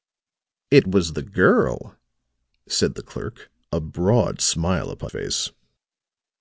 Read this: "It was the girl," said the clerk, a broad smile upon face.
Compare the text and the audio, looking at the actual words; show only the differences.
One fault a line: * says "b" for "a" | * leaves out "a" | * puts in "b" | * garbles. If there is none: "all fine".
all fine